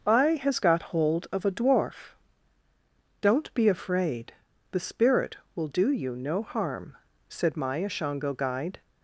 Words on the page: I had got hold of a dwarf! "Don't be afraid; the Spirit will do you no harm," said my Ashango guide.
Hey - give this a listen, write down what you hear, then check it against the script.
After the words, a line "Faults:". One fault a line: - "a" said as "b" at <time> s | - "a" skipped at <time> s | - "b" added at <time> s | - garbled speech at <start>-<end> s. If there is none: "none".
I has got hold of a dwarf! "Don't be afraid; the Spirit will do you no harm," said my Ashango guide.
Faults:
- "had" said as "has" at 0.4 s